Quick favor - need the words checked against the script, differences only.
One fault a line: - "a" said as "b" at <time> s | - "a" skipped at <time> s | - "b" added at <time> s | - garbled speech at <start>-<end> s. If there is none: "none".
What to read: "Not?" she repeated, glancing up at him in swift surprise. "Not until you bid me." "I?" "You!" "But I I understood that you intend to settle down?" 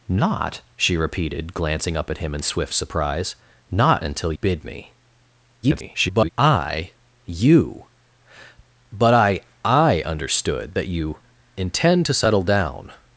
- "you" skipped at 4.3 s
- garbled speech at 5.6-6.3 s